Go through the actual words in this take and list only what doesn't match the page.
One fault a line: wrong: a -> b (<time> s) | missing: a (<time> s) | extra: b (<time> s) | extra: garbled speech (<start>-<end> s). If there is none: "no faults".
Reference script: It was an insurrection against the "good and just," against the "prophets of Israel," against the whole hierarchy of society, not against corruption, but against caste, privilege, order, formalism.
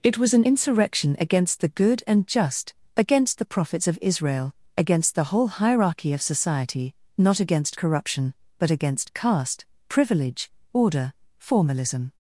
no faults